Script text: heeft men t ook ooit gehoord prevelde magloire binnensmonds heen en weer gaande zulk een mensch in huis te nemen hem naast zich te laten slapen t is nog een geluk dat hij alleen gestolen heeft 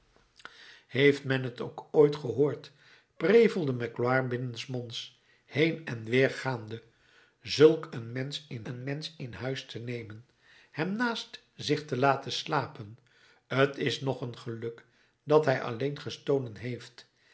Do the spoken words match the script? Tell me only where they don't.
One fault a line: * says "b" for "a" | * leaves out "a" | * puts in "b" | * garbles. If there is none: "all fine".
* puts in "een mensch in"